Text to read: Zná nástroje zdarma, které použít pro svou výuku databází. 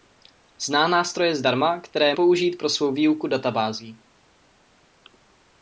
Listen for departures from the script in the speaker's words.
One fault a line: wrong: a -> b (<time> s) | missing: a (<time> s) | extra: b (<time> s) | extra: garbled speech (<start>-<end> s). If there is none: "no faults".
no faults